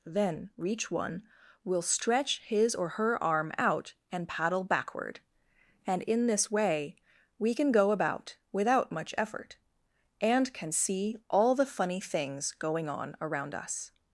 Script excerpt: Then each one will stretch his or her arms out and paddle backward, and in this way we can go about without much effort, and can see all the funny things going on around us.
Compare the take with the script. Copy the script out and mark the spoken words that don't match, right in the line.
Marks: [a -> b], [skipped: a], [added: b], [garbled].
Then [each -> reach] one will stretch his or her [arms -> arm] out and paddle backward, and in this way we can go about without much effort, and can see all the funny things going on around us.